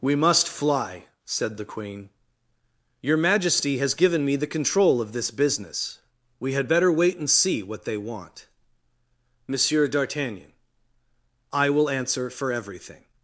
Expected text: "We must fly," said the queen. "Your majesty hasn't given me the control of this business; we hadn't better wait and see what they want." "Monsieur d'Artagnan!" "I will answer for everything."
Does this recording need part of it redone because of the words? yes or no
yes